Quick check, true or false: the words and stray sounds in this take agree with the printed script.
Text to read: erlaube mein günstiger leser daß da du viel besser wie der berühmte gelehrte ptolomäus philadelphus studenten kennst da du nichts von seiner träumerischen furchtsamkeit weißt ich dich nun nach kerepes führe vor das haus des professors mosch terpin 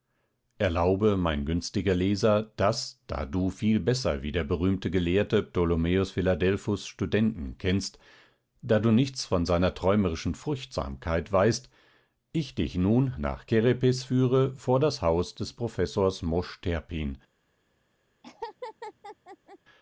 false